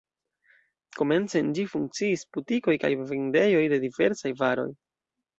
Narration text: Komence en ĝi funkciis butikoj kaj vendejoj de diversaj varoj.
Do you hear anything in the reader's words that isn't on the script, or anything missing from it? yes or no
no